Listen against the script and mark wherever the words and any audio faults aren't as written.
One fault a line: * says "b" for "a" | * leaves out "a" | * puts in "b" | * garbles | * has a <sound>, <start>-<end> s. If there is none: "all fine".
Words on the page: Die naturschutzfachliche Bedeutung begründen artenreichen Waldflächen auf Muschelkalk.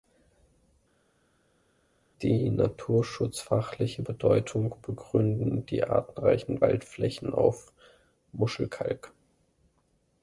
* puts in "die"